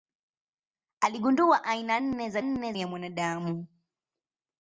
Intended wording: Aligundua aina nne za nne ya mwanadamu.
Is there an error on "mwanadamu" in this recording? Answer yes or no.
no